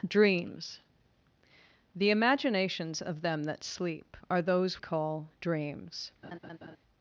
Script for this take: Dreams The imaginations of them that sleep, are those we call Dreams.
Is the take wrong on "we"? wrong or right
wrong